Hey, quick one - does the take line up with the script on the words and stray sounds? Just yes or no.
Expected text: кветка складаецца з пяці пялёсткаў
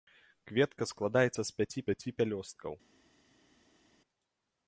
no